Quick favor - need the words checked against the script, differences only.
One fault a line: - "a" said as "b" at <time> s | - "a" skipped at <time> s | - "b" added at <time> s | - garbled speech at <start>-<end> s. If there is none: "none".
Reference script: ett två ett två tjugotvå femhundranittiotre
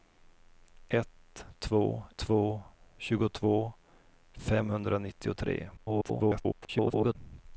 - "ett" skipped at 2.0 s
- garbled speech at 5.8-7.2 s